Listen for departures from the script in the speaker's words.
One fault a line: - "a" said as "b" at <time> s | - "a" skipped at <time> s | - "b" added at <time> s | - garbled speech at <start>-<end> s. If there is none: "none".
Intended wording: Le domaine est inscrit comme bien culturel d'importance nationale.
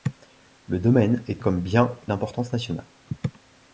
- "inscrit" skipped at 1.4 s
- "culturel" skipped at 1.9 s